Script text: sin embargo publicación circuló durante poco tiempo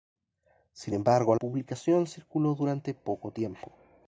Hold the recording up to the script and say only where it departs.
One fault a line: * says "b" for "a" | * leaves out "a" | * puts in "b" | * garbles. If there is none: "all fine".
all fine